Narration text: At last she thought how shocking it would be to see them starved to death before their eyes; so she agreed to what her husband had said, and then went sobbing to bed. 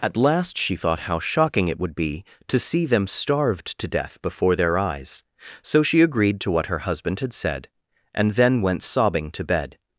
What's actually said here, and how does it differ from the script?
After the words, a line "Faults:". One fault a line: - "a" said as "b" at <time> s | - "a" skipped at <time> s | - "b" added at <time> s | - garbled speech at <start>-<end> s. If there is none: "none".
At last she thought how shocking it would be to see them starved to death before their eyes; so she agreed to what her husband had said, and then went sobbing to bed.
Faults:
none